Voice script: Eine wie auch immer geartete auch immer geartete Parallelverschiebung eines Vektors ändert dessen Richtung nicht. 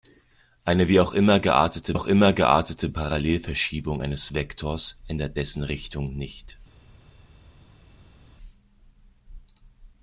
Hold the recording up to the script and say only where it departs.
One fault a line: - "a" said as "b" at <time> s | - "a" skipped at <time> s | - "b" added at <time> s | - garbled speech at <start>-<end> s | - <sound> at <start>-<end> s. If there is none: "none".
none